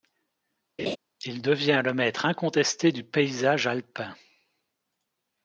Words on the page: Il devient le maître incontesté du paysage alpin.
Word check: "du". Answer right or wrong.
right